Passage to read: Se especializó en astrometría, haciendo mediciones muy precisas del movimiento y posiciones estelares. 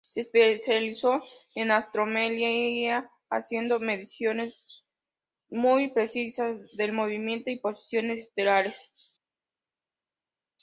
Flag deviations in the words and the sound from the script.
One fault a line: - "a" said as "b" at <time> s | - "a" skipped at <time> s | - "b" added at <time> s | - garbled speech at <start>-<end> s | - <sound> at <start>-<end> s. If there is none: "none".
none